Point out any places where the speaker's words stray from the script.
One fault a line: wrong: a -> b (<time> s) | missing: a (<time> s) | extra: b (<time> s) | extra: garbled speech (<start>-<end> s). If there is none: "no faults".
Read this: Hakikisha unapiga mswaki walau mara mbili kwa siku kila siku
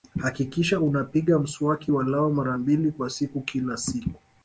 no faults